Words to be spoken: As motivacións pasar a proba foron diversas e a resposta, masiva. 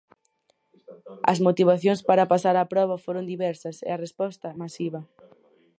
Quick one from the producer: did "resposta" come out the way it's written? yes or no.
yes